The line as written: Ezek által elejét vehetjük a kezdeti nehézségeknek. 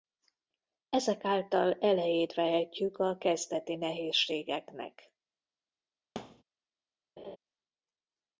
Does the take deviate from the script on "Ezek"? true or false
false